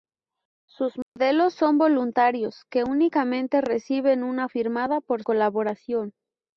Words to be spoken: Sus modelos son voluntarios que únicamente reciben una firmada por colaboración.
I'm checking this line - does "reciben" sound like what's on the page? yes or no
yes